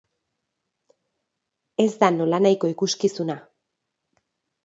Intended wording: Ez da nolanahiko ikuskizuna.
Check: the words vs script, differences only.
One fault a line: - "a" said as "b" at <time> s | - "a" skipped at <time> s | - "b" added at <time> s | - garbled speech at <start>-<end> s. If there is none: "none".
none